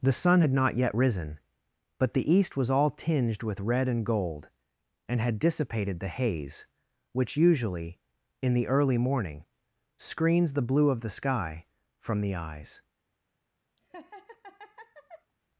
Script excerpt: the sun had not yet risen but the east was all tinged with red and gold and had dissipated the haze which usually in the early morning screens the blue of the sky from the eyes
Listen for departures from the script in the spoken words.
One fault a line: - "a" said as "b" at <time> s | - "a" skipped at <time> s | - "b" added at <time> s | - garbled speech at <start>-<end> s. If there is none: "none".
none